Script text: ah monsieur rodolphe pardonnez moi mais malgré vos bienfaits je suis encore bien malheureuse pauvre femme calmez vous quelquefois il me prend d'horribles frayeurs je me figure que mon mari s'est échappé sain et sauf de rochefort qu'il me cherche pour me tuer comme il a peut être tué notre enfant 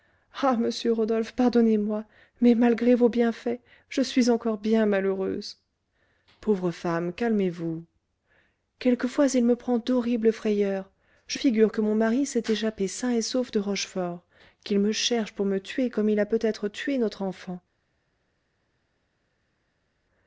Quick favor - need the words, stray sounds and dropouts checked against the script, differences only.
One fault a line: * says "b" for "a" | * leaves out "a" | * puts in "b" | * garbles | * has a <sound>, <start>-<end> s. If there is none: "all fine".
* leaves out "me"